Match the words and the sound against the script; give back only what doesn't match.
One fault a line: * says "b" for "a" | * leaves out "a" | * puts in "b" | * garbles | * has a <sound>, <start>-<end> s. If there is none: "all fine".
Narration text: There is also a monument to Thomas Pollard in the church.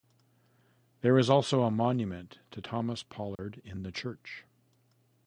* has a dropout, 3.4-3.4 s